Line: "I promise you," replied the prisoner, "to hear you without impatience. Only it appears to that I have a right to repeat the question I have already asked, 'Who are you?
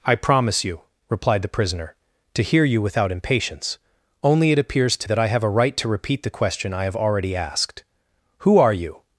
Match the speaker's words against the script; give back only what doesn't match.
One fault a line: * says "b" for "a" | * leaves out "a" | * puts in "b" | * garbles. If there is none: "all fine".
all fine